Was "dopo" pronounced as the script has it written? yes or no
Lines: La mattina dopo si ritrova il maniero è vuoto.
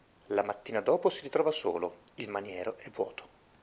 yes